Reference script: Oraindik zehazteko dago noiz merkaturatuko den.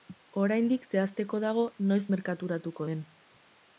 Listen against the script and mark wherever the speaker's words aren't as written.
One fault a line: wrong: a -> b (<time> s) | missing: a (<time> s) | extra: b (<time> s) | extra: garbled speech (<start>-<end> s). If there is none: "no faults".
no faults